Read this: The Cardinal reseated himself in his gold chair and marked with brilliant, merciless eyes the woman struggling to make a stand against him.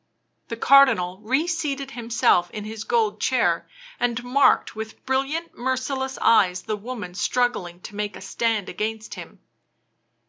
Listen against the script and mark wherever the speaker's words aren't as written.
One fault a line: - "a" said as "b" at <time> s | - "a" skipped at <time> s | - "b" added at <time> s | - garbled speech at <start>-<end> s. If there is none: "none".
none